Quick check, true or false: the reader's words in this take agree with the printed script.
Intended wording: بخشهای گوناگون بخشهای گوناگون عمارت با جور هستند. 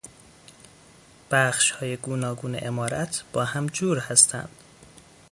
false